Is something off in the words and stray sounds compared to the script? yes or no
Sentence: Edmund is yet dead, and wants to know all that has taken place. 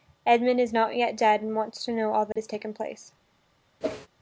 yes